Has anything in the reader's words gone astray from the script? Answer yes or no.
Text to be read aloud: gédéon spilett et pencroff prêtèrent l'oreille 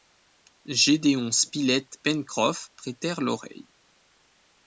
yes